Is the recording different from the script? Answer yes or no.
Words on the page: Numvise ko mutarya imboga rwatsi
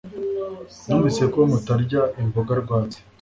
no